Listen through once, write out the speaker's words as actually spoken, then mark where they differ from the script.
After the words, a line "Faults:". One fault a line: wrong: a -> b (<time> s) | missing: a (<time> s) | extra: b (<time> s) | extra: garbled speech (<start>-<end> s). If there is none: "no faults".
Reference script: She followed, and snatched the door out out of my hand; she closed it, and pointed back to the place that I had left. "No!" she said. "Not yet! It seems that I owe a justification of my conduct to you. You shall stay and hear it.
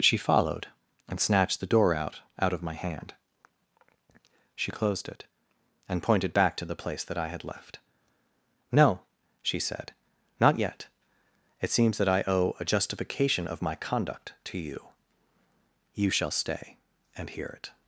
She followed, and snatched the door out out of my hand; she closed it, and pointed back to the place that I had left. "No!" she said. "Not yet! It seems that I owe a justification of my conduct to you. You shall stay and hear it.
Faults:
no faults